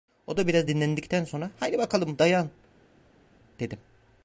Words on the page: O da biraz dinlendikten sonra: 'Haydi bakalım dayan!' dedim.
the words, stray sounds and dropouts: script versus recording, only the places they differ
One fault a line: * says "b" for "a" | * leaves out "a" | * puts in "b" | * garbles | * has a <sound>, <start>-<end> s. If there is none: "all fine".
all fine